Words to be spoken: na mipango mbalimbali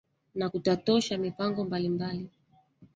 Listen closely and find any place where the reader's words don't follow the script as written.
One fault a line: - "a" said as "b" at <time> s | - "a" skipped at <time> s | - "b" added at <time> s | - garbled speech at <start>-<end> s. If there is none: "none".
- "kutatosha" added at 0.5 s